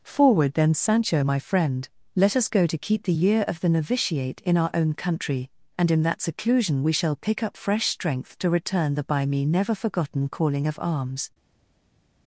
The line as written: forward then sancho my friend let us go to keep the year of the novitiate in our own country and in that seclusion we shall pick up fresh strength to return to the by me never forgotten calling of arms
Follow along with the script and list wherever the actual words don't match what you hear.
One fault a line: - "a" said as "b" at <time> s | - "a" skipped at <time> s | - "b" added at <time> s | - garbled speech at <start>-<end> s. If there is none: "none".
- "to" skipped at 9.0 s